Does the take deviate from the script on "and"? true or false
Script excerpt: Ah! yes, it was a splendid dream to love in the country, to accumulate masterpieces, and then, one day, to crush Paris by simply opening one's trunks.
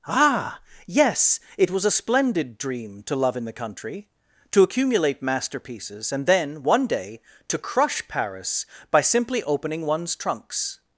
false